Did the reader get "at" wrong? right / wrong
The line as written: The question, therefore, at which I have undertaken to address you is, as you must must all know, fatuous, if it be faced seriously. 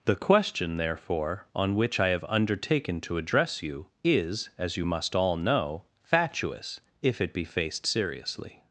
wrong